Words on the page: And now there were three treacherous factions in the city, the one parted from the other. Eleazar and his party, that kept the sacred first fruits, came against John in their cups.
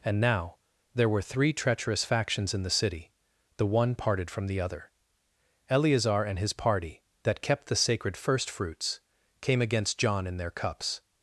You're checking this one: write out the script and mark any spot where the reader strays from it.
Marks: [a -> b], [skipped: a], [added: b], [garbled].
And now there were three treacherous factions in the city, the one parted from the other. Eleazar and his party, that kept the sacred first fruits, came against John in their cups.